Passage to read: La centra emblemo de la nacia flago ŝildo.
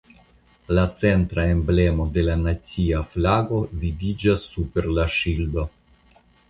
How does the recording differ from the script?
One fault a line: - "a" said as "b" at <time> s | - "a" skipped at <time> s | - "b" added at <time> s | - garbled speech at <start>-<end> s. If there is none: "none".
- "vidiĝas super la" added at 3.9 s